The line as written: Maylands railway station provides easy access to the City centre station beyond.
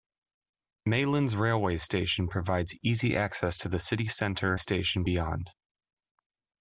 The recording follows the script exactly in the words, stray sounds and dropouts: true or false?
true